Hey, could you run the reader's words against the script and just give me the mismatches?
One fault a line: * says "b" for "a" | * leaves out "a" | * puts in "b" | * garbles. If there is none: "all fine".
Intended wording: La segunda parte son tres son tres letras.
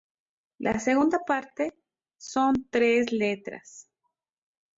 * leaves out "son tres"